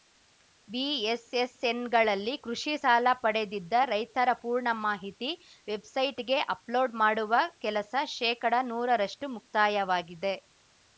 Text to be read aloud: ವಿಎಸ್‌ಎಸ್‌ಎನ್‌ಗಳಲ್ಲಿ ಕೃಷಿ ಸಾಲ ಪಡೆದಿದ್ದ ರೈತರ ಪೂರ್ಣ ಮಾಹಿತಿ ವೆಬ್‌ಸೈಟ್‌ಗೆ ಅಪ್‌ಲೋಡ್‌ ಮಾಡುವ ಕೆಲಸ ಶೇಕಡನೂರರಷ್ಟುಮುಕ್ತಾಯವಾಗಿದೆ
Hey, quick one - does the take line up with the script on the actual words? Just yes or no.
yes